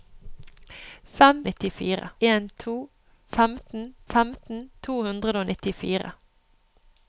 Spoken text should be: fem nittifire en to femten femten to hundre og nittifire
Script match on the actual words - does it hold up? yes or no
yes